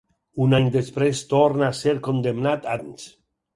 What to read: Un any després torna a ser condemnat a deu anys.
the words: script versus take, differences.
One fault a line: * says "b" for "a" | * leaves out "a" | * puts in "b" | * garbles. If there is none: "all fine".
* leaves out "deu"